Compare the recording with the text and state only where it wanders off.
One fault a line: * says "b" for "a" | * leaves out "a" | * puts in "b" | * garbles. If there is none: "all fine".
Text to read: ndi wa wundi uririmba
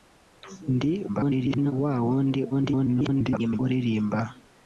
* garbles
* garbles